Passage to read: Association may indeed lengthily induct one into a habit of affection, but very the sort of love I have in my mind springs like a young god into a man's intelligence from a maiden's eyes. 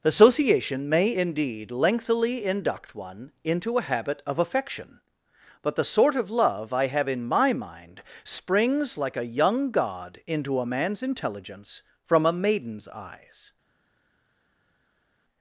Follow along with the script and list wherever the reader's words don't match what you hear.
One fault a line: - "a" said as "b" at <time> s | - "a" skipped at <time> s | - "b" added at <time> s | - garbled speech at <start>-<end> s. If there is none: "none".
- "very" skipped at 5.8 s